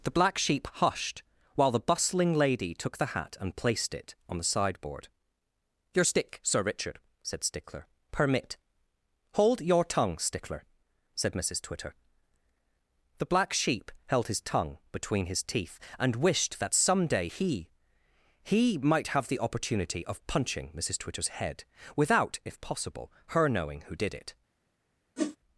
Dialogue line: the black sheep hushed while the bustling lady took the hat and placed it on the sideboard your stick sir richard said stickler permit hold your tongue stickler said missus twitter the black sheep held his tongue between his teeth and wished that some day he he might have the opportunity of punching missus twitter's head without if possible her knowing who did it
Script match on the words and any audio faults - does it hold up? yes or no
no